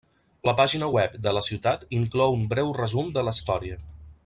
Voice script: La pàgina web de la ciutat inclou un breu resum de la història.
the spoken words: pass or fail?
pass